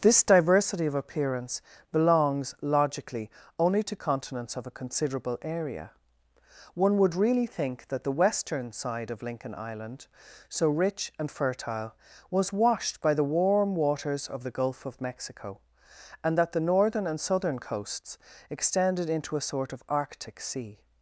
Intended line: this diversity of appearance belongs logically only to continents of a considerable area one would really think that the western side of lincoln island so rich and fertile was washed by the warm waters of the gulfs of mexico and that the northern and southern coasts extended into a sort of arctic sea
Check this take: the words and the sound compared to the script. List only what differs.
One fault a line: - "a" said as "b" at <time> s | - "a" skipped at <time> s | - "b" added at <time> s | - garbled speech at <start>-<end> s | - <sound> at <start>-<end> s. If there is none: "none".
- "gulfs" said as "gulf" at 14.5 s